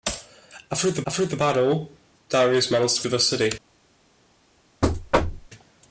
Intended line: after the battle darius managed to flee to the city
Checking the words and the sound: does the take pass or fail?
fail